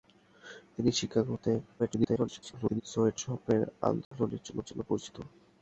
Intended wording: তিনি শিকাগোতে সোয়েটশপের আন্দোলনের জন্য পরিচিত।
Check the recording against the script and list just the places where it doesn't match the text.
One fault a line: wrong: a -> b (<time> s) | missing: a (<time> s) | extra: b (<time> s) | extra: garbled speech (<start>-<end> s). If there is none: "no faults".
extra: garbled speech (1.8-2.8 s)
extra: জন্য (4.7 s)